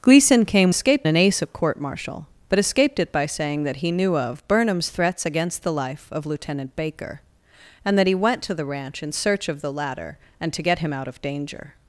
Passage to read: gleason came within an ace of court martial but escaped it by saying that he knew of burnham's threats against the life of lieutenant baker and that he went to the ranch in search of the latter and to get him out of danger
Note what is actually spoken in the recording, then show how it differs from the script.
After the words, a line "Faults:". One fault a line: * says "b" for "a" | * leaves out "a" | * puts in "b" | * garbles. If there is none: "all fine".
gleason came escaped an ace of court martial but escaped it by saying that he knew of burnham's threats against the life of lieutenant baker and that he went to the ranch in search of the latter and to get him out of danger
Faults:
* says "escaped" for "within"